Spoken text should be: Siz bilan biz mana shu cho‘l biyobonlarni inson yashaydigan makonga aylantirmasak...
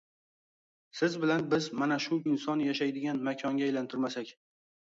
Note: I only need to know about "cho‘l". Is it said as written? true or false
false